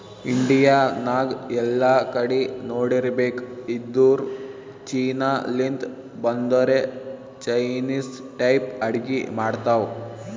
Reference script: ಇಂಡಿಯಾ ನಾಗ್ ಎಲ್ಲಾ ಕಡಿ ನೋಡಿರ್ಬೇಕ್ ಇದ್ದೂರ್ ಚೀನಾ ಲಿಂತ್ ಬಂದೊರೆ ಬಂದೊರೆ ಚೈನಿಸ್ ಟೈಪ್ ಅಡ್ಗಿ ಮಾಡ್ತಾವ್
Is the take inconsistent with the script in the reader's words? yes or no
yes